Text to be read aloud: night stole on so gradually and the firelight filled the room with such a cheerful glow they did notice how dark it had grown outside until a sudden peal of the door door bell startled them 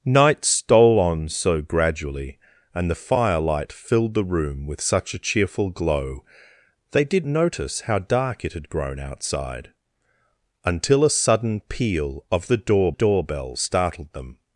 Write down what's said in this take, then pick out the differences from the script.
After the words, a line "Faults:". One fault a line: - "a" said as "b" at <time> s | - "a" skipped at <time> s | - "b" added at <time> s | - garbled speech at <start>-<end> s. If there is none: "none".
night stole on so gradually and the firelight filled the room with such a cheerful glow they did notice how dark it had grown outside until a sudden peal of the door door bell startled them
Faults:
none